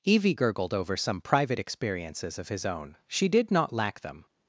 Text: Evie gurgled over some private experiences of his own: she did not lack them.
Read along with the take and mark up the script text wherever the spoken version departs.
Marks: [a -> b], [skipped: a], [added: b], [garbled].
Evie gurgled over some private experiences of his own: she did not lack them.